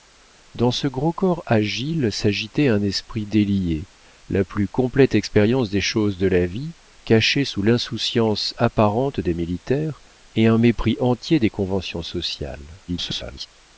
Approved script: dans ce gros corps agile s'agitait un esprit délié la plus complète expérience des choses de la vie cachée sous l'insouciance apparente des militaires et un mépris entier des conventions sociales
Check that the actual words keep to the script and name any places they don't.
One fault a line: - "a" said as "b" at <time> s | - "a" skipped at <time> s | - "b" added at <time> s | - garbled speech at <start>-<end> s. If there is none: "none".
- garbled speech at 12.9-13.5 s